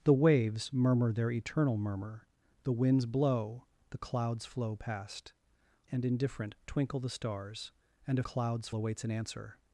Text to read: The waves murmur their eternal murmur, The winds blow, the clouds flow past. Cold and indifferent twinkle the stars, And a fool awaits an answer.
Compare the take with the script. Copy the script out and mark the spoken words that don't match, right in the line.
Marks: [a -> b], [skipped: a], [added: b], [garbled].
The waves murmur their eternal murmur, The winds blow, the clouds flow past. [skipped: Cold] and indifferent twinkle the stars, And a [fool -> clouds] awaits an answer.